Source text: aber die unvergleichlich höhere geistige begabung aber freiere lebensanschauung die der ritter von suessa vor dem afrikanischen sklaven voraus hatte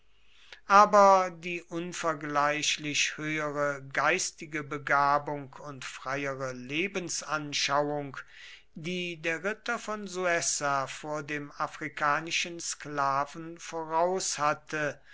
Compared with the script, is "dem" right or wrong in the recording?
right